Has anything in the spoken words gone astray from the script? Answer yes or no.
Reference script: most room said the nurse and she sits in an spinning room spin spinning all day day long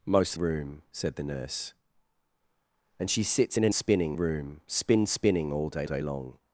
no